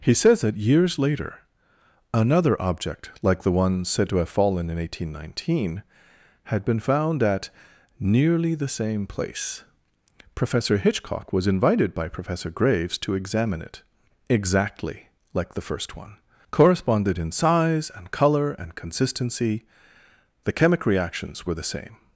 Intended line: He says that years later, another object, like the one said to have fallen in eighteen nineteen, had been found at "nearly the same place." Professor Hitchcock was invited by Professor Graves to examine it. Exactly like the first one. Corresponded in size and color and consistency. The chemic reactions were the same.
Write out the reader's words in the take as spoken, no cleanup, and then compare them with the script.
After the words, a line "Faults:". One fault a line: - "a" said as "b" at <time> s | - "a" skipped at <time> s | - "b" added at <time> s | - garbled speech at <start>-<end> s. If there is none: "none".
He says that years later, another object, like the one said to have fallen in eighteen nineteen, had been found at "nearly the same place." Professor Hitchcock was invited by Professor Graves to examine it. Exactly like the first one. Corresponded in size and color and consistency. The chemic reactions were the same.
Faults:
none